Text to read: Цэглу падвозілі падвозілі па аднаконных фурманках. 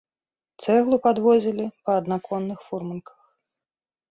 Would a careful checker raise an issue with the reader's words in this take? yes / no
yes